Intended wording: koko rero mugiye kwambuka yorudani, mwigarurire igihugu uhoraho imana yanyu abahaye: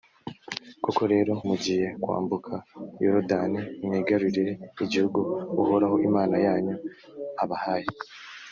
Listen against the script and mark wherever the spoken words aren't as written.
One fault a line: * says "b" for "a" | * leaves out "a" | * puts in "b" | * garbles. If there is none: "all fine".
all fine